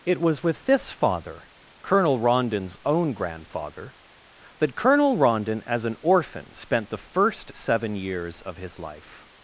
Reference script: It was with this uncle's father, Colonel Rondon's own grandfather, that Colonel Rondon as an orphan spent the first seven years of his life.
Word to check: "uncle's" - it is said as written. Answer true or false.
false